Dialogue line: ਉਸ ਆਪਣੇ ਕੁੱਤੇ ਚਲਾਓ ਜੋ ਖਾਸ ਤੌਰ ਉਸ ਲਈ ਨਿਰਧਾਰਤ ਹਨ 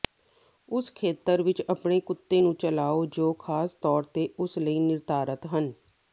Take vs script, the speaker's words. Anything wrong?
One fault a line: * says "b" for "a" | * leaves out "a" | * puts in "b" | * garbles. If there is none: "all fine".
* puts in "ਖੇਤਰ ਵਿੱਚ"
* puts in "ਨੂੰ"
* puts in "ਤੇ"